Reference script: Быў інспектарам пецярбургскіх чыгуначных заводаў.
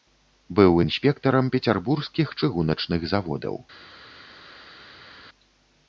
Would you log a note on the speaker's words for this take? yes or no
no